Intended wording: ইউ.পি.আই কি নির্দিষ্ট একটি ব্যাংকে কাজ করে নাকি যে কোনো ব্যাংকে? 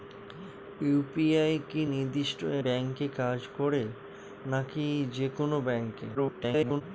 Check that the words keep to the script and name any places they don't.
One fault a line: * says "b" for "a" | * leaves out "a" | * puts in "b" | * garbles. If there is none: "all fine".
* leaves out "একটি"
* garbles